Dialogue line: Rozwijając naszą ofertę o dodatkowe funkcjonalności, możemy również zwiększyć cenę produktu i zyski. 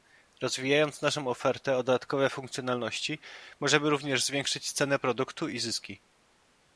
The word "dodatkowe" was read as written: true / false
true